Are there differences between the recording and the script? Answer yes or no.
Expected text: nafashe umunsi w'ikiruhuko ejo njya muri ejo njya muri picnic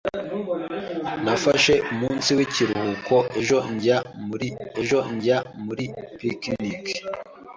no